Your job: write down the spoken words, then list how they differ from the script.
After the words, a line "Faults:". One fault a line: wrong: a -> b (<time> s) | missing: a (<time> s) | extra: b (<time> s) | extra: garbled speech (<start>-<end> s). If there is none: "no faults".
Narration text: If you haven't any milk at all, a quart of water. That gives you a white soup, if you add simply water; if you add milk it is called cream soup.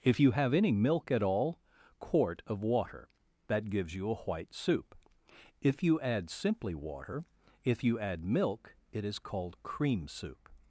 If you have any milk at all, quart of water. That gives you a white soup, if you add simply water; if you add milk it is called cream soup.
Faults:
wrong: haven't -> have (0.3 s)
missing: a (1.6 s)